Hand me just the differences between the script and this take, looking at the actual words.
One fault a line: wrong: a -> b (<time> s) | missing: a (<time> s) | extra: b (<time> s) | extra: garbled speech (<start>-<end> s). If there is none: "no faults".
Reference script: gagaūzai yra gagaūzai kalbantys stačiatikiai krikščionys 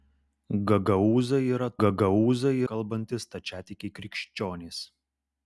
no faults